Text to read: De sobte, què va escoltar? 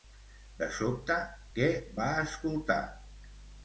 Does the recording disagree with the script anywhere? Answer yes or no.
no